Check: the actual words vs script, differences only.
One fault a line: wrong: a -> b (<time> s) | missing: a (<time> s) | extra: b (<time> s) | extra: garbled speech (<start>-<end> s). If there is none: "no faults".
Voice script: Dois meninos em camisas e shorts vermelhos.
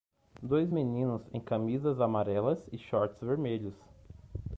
extra: amarelas (2.0 s)